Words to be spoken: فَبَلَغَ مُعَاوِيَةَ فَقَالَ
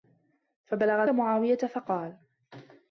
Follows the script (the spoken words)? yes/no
yes